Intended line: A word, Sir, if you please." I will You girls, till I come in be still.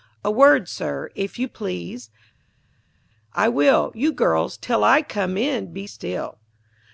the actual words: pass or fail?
pass